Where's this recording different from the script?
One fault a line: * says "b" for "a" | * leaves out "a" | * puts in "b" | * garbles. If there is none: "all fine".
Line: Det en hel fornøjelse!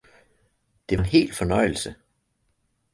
all fine